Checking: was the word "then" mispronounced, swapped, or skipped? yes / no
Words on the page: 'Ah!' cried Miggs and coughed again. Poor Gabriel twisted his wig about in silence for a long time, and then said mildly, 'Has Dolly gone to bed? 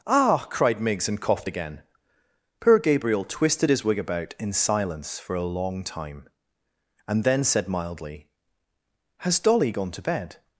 no